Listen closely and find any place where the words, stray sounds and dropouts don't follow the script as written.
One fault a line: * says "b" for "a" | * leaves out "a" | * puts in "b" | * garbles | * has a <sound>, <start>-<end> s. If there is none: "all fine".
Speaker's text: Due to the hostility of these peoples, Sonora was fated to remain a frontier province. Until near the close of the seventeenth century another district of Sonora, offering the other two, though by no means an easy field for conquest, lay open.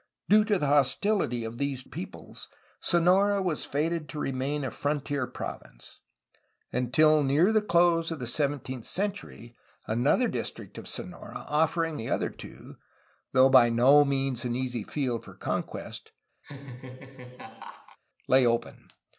* has a laugh, 16.4-18.0 s